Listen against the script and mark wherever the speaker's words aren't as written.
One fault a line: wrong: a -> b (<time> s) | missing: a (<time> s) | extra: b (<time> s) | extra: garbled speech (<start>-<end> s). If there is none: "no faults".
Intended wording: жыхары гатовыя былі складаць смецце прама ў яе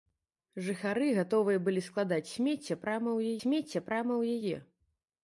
extra: смецце прама ў (3.4 s)